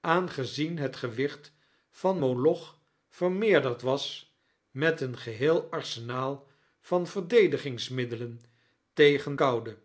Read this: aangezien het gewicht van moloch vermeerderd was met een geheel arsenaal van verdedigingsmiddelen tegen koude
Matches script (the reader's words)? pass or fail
pass